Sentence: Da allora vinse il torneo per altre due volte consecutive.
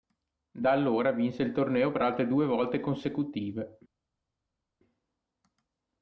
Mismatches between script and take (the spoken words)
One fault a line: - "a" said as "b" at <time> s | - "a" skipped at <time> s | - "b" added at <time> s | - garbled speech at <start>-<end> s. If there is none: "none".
none